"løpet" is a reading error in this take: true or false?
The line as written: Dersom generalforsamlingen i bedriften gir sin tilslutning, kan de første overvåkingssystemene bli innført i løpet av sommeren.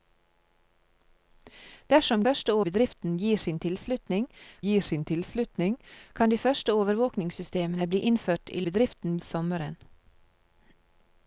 true